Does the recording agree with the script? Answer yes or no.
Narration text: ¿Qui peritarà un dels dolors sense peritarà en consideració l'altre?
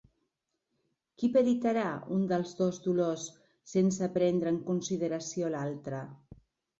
no